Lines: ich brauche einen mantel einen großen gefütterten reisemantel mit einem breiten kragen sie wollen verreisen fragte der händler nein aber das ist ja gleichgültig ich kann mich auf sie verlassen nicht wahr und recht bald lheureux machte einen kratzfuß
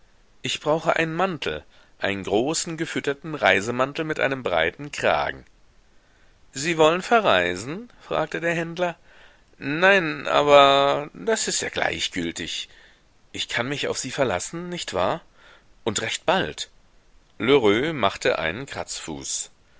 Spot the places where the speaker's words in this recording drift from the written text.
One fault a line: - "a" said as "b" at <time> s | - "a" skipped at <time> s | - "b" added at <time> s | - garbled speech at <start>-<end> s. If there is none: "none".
none